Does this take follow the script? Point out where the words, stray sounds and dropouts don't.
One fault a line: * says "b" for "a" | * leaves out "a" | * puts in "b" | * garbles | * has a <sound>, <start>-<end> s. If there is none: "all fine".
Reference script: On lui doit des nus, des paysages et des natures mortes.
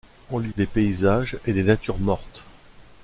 * leaves out "doit des nus"